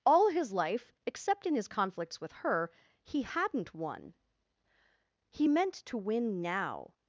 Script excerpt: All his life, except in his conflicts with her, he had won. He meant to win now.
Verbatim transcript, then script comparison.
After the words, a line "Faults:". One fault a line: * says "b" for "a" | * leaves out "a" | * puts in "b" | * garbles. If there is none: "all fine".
All his life, except in his conflicts with her, he hadn't won. He meant to win now.
Faults:
* says "hadn't" for "had"